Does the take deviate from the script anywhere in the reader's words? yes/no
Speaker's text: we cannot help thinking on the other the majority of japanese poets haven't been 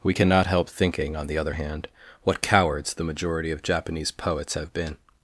yes